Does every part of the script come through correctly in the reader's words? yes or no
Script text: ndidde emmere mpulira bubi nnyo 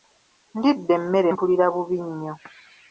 yes